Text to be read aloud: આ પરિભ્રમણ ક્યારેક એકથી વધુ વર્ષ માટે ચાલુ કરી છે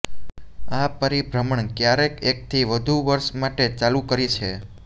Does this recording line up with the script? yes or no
yes